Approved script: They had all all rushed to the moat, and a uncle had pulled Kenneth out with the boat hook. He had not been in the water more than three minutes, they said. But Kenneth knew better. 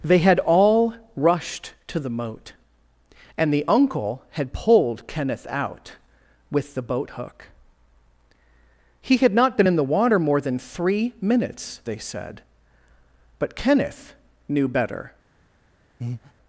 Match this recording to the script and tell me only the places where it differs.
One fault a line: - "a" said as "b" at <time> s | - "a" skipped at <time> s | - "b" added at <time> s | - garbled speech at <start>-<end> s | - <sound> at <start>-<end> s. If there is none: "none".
- "all" skipped at 0.9 s
- "a" said as "the" at 3.5 s
- breath at 16.0-16.3 s